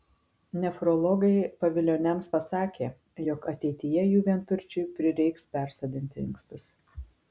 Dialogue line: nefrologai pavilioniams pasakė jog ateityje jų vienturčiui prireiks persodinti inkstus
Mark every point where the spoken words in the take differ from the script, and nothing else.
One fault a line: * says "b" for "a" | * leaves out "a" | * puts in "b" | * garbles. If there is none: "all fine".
all fine